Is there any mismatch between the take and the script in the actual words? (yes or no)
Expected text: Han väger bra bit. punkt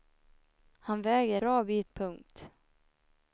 no